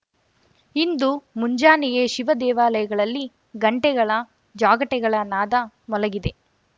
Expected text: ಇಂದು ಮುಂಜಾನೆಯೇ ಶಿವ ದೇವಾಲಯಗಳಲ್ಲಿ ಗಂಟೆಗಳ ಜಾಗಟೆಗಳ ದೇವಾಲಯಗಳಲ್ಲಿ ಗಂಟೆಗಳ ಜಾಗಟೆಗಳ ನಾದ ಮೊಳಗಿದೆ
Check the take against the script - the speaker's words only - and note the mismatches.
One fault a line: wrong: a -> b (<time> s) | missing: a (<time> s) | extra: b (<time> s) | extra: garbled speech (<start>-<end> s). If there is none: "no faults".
missing: ದೇವಾಲಯಗಳಲ್ಲಿ ಗಂಟೆಗಳ ಜಾಗಟೆಗಳ (5.2 s)